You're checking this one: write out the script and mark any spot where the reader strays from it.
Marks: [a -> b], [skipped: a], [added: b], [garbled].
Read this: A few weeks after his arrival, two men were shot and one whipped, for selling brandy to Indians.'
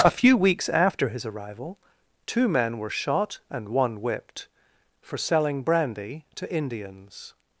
A few weeks after his arrival, two men were shot and one whipped, for selling brandy to Indians.'